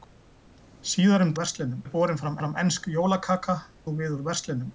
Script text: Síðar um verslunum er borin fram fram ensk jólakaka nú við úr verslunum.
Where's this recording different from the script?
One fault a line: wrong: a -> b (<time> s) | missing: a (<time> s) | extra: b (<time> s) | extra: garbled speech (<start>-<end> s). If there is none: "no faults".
no faults